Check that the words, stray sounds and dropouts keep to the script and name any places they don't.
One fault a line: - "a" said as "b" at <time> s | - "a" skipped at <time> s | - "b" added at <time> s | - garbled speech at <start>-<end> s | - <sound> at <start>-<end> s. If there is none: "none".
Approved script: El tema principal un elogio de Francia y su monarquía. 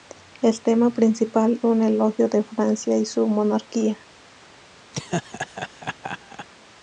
- laugh at 4.9-6.5 s